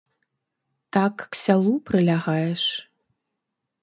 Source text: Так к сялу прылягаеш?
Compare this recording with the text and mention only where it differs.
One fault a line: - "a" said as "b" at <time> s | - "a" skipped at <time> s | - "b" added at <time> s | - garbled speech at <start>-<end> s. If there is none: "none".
none